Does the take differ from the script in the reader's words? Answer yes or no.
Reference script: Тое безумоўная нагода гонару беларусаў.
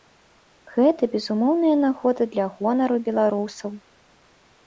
yes